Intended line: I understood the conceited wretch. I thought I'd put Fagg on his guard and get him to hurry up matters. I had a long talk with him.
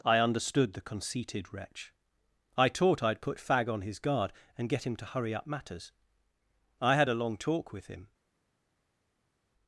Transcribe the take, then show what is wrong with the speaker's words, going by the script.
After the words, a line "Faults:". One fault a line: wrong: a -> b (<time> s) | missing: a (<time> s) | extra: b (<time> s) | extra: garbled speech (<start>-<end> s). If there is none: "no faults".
I understood the conceited wretch. I taught I'd put Fagg on his guard and get him to hurry up matters. I had a long talk with him.
Faults:
wrong: thought -> taught (2.7 s)